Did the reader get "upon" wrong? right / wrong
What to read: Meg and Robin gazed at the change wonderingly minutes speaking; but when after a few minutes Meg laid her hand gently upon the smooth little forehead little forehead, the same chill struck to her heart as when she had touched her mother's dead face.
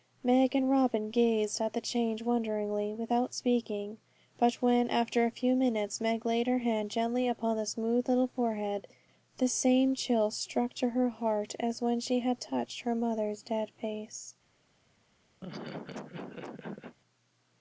right